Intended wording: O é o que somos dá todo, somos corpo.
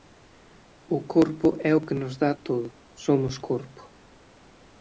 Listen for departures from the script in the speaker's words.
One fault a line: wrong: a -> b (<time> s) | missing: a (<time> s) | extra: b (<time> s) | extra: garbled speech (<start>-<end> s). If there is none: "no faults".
extra: corpo (1.1 s)
wrong: somos -> nos (2.0 s)